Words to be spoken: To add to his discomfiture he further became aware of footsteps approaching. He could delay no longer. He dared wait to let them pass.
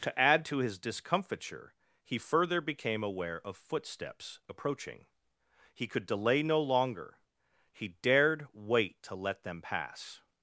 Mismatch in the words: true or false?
false